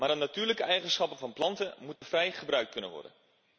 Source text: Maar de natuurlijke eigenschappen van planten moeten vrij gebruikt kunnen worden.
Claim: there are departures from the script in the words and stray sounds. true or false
true